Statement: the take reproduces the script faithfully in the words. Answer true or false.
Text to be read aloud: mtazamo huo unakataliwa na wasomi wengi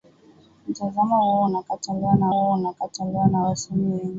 false